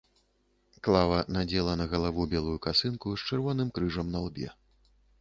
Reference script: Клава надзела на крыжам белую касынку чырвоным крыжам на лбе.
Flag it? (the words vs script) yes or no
yes